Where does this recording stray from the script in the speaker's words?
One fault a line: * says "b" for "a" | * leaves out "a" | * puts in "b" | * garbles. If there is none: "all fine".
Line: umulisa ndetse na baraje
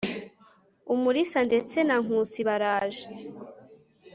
* puts in "nkusi"